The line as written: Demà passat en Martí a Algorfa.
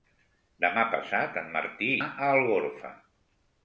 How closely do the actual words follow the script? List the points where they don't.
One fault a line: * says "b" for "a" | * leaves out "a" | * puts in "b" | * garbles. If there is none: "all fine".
all fine